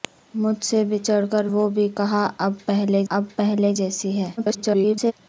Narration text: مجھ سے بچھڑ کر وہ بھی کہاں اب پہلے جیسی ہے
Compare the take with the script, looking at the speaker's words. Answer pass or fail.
fail